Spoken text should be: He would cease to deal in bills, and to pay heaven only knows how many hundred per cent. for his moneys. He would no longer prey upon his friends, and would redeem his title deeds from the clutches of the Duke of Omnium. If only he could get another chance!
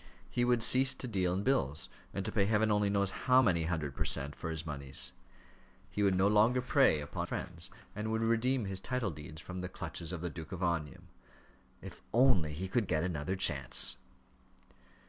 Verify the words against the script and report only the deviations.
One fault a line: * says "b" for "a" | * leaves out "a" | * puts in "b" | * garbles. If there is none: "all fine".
* leaves out "his"